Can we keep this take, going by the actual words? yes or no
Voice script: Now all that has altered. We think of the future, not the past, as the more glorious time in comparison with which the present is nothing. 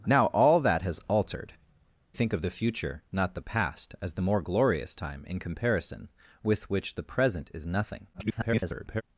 no